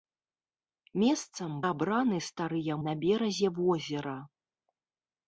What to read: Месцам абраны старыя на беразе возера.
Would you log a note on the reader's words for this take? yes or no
no